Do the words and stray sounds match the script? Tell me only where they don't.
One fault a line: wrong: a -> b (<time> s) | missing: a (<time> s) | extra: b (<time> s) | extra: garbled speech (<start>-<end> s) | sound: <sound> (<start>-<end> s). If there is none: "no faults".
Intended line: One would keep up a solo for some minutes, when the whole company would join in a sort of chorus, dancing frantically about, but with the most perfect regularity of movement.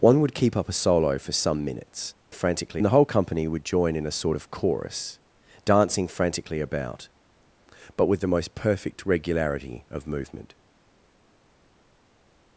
wrong: when -> frantically (2.3 s)